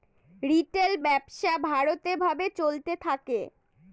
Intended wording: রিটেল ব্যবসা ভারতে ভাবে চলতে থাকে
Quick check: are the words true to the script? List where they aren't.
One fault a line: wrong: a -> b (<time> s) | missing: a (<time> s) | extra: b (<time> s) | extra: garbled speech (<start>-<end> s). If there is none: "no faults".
no faults